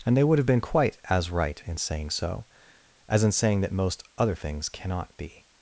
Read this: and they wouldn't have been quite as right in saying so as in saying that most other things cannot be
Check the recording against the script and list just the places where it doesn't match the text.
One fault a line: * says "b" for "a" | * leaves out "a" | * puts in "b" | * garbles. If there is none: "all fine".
* says "would" for "wouldn't"